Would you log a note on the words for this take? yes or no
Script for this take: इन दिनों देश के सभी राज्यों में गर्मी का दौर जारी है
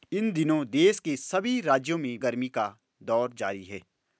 no